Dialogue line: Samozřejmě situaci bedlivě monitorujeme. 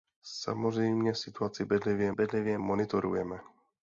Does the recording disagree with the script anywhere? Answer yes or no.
yes